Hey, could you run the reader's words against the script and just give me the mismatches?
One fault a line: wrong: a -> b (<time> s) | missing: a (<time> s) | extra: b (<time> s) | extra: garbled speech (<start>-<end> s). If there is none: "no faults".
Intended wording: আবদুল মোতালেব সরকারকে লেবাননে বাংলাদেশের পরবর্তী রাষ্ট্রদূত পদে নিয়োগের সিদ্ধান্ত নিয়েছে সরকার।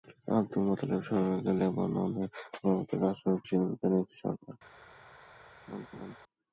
missing: বাংলাদেশের (2.2 s)
missing: পদে নিয়োগের (3.4 s)